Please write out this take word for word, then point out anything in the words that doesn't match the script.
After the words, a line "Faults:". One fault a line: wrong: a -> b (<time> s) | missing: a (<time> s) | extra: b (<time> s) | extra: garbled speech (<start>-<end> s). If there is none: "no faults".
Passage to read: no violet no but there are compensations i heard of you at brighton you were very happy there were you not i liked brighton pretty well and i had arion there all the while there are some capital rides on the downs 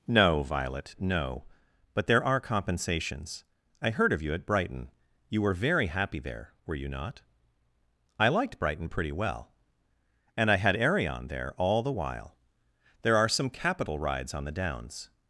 no violet no but there are compensations i heard of you at brighton you were very happy there were you not i liked brighton pretty well and i had arion there all the while there are some capital rides on the downs
Faults:
no faults